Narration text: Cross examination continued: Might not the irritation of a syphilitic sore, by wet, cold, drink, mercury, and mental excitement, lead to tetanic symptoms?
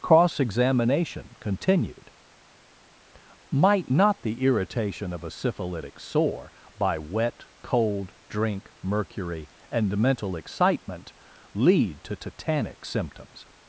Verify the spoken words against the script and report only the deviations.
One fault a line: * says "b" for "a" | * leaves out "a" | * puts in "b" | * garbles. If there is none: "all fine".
all fine